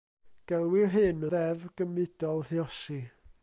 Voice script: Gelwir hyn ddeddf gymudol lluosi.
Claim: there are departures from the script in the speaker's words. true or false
false